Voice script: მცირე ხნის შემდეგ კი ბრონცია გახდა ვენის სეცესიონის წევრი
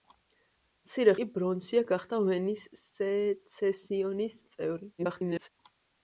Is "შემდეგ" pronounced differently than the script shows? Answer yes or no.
yes